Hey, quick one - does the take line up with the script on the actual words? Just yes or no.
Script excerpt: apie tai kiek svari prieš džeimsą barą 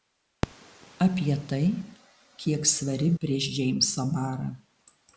yes